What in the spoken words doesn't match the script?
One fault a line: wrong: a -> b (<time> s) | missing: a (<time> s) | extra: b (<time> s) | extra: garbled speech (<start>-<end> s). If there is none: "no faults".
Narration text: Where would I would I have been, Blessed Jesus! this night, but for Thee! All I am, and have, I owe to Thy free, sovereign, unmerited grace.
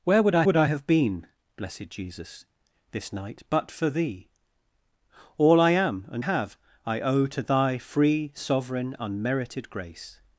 no faults